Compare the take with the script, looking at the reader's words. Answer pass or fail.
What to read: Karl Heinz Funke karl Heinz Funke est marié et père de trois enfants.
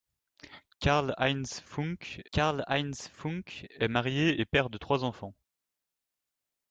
pass